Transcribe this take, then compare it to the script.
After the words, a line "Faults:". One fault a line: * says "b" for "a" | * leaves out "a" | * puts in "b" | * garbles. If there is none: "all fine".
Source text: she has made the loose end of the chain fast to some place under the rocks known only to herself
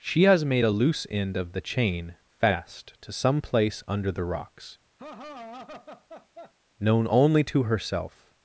she has made a loose end of the chain fast to some place under the rocks known only to herself
Faults:
* says "a" for "the"